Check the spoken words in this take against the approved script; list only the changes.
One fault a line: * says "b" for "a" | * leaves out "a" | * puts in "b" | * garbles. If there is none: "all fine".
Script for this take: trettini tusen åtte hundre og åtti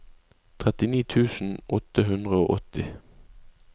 all fine